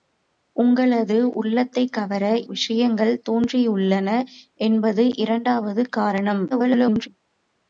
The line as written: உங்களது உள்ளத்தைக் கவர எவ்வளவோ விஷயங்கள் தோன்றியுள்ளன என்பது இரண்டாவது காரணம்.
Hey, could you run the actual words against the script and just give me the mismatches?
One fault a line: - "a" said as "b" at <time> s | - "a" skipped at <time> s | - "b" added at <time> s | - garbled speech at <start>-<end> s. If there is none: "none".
- "எவ்வளவோ" skipped at 2.2 s
- garbled speech at 6.5-7.1 s